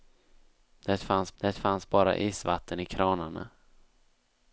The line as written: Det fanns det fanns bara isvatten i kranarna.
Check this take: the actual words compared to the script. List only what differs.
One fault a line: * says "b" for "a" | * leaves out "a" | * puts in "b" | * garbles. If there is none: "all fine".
all fine